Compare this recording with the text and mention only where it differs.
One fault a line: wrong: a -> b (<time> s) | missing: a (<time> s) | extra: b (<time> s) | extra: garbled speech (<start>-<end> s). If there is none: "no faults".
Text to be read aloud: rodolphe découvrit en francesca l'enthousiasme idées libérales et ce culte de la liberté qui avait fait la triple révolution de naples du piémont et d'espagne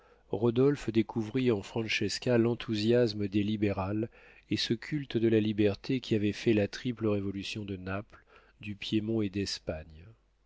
no faults